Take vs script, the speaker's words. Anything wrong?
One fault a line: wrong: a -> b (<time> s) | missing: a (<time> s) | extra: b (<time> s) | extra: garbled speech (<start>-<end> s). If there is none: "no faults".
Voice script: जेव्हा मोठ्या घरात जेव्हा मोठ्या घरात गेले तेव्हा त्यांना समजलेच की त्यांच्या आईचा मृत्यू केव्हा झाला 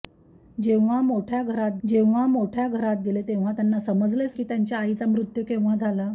no faults